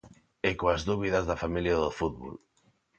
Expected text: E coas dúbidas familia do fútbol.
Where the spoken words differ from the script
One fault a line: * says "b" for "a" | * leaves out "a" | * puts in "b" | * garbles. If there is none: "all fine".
* puts in "da"